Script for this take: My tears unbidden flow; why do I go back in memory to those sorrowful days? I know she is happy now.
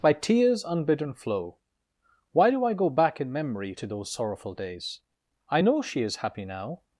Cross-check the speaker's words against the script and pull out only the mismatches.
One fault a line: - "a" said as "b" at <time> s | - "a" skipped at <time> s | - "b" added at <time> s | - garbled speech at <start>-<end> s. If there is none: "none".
- "My" said as "By" at 0.0 s